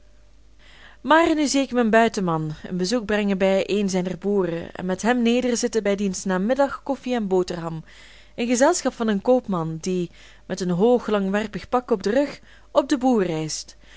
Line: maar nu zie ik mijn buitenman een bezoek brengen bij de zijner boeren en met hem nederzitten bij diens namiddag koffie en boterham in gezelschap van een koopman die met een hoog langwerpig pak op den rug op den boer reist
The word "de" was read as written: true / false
false